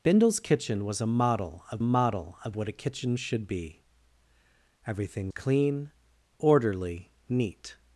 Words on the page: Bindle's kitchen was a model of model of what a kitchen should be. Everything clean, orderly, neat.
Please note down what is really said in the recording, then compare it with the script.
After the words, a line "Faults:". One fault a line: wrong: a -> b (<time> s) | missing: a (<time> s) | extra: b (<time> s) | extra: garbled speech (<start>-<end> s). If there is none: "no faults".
Bindle's kitchen was a model of model of what a kitchen should be. Everything clean, orderly, neat.
Faults:
no faults